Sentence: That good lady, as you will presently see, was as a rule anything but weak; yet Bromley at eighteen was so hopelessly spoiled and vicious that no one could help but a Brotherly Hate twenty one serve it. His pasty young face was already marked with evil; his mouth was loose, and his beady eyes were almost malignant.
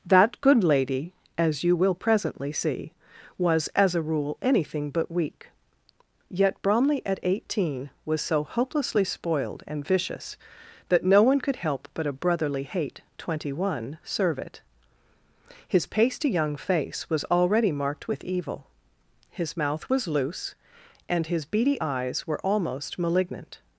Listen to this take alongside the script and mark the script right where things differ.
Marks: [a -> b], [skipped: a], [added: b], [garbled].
That good lady, as you will presently see, was as a rule anything but weak; yet Bromley at eighteen was so hopelessly spoiled and vicious that no one could help but a Brotherly Hate twenty one serve it. His pasty young face was already marked with evil; his mouth was loose, and his beady eyes were almost malignant.